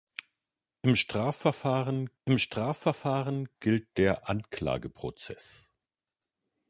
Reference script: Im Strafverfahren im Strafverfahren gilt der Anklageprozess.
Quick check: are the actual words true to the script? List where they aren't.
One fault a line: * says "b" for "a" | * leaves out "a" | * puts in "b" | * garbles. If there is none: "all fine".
all fine